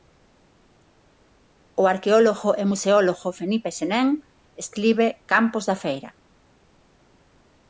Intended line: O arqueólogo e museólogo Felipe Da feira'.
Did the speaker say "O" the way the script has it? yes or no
yes